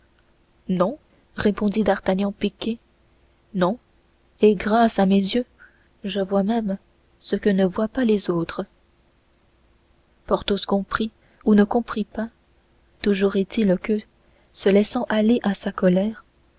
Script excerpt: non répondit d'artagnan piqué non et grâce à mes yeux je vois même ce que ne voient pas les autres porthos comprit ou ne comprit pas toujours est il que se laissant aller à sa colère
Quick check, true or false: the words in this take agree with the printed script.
true